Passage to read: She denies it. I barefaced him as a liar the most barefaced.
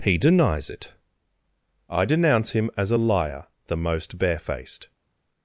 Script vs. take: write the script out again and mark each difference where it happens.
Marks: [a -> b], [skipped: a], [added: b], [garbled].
[She -> He] denies it. I [barefaced -> denounce] him as a liar the most barefaced.